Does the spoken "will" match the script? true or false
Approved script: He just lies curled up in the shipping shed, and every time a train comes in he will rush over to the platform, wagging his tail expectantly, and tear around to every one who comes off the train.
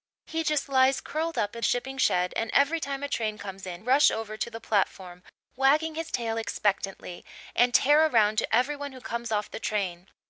false